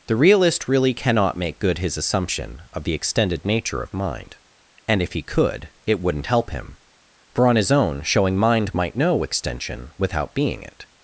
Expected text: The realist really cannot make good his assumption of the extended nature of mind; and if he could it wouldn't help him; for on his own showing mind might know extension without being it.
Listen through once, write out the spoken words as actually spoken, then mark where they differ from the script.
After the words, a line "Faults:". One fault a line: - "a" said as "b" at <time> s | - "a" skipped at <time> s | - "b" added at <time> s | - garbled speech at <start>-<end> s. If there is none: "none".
The realist really cannot make good his assumption of the extended nature of mind; and if he could it wouldn't help him; for on his own showing mind might know extension without being it.
Faults:
none